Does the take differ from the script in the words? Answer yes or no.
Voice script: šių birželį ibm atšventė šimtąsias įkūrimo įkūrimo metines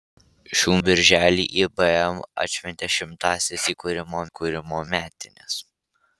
no